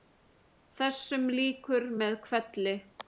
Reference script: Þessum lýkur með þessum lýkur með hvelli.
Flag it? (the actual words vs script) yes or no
yes